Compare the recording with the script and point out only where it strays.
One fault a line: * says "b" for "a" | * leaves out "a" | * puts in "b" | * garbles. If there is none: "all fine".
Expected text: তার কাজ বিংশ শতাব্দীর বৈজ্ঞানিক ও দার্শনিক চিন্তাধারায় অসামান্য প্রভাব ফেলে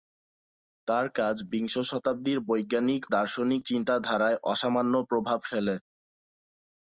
* leaves out "ও"